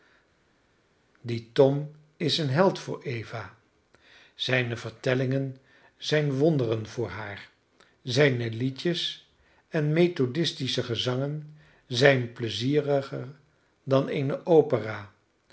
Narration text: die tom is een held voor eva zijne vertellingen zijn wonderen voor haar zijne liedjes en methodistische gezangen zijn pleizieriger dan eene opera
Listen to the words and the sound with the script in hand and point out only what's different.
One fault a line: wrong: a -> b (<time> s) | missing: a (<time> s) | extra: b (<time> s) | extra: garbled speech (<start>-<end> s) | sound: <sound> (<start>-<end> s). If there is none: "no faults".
no faults